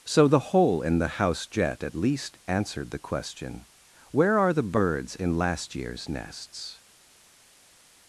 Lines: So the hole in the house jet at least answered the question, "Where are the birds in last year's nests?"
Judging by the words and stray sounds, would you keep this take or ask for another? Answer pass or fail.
pass